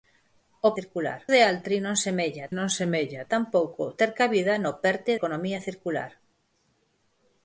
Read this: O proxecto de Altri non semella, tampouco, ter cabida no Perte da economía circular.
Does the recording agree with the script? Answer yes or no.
no